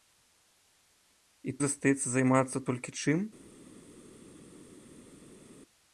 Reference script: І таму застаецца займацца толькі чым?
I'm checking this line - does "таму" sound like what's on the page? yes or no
no